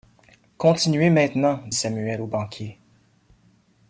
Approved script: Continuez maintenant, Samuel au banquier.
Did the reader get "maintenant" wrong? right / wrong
right